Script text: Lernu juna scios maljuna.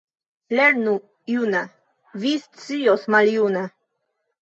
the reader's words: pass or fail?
fail